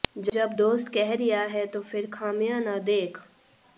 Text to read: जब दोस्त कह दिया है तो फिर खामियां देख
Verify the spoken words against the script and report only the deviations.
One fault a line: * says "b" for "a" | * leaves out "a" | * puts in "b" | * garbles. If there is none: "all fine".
* puts in "न"